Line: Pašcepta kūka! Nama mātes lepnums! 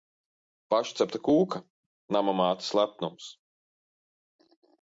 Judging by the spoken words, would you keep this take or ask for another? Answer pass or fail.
pass